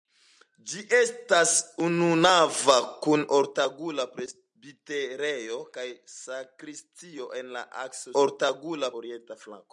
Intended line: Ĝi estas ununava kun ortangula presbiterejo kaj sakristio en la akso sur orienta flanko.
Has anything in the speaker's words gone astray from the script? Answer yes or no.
yes